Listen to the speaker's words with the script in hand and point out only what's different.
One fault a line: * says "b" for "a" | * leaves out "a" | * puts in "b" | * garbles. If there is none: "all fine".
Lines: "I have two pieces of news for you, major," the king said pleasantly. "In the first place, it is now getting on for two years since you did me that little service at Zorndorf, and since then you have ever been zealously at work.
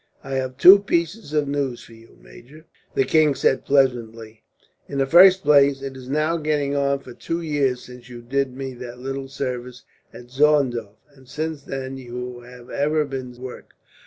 * leaves out "zealously at"